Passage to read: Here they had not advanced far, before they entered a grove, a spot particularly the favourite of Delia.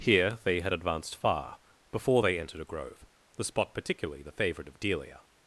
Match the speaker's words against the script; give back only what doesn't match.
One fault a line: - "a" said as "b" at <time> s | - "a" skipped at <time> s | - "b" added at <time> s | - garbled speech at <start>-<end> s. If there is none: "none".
- "not" skipped at 0.7 s
- "a" said as "the" at 3.4 s